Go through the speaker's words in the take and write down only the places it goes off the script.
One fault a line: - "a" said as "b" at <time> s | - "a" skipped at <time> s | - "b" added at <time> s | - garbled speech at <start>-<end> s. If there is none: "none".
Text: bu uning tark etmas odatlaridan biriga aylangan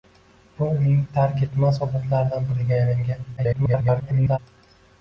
- garbled speech at 3.4-4.4 s